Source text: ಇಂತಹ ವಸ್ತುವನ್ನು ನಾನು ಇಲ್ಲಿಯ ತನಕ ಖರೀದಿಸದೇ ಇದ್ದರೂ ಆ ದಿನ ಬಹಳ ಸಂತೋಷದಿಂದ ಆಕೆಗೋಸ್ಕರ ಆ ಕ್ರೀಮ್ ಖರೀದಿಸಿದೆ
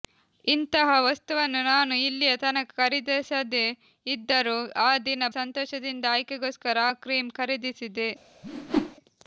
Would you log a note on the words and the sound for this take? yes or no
yes